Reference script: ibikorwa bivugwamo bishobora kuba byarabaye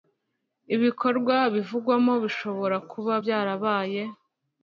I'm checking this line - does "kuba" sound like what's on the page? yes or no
yes